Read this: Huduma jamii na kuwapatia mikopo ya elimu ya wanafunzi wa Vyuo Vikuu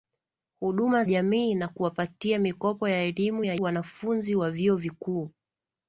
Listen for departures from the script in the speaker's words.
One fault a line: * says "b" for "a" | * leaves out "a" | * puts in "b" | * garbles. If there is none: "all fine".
all fine